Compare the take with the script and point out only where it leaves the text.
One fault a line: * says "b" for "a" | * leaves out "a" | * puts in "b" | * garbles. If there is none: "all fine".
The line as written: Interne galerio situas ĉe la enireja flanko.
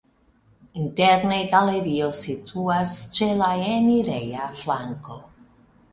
all fine